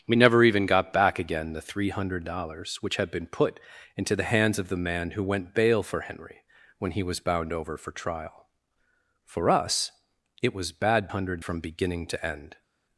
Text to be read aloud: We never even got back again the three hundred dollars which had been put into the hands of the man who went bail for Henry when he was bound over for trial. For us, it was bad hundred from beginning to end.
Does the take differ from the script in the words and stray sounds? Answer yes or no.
no